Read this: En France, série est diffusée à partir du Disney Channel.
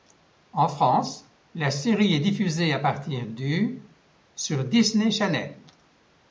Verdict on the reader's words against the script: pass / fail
fail